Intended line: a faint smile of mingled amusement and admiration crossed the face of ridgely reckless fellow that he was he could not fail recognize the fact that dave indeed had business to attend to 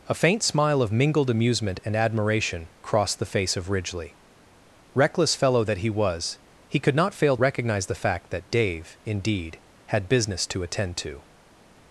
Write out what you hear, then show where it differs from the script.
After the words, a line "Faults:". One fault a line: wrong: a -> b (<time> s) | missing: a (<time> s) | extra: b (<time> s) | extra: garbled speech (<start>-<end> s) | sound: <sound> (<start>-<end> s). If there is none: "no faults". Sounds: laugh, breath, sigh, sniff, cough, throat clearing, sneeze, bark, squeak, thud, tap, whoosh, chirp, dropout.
a faint smile of mingled amusement and admiration crossed the face of ridgely reckless fellow that he was he could not fail recognize the fact that dave indeed had business to attend to
Faults:
no faults